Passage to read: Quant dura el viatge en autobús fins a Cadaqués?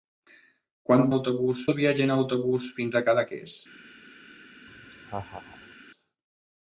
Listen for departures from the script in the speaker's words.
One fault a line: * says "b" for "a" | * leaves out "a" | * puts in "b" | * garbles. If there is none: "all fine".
* says "autobús" for "dura"